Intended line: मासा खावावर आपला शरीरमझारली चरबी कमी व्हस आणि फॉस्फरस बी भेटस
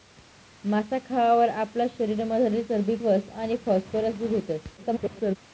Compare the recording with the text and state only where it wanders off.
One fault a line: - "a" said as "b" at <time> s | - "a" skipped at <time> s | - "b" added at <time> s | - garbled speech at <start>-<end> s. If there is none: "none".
- "कमी" skipped at 3.0 s
- garbled speech at 4.8-5.4 s